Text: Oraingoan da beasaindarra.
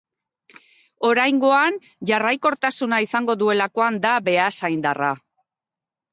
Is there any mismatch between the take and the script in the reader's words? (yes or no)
yes